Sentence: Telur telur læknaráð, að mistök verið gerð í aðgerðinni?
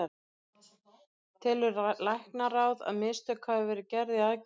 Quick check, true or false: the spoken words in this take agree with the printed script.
false